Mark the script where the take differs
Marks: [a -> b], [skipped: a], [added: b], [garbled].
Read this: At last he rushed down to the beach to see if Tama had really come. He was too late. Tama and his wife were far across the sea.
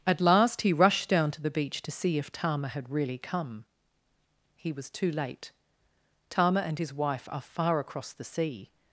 At last he rushed down to the beach to see if Tama had really come. He was too late. Tama and his wife [were -> are] far across the sea.